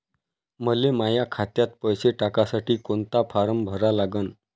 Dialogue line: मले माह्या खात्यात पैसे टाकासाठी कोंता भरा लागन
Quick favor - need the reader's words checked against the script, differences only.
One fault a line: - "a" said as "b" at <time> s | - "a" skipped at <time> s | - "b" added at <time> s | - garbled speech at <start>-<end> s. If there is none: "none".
- "फारम" added at 3.3 s